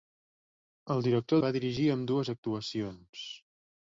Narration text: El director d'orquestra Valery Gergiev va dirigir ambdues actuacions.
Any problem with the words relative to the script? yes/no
yes